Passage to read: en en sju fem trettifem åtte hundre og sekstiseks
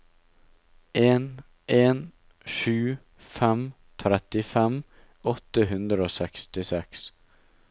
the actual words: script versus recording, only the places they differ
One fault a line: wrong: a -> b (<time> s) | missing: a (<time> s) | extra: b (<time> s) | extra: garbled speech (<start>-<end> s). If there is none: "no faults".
no faults